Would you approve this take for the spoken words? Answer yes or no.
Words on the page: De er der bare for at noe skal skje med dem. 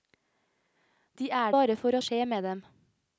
no